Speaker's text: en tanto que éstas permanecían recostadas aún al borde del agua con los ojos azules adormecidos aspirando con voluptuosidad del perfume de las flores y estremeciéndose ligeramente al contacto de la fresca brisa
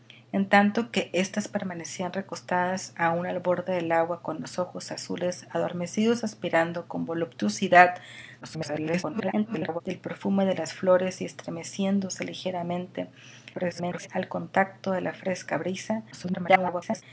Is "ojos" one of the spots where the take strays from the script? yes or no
no